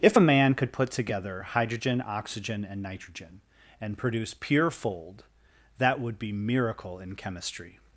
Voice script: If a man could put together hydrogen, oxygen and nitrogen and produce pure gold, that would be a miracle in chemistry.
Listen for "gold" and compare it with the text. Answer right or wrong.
wrong